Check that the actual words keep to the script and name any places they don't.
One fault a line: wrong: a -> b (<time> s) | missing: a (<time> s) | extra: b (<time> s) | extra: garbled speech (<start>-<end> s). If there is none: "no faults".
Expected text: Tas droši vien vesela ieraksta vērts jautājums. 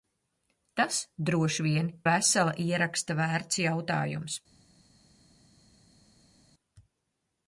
no faults